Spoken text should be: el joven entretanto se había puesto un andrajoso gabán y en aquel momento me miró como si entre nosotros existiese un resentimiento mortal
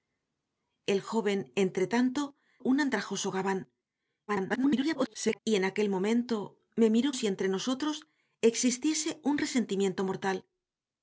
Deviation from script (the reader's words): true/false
true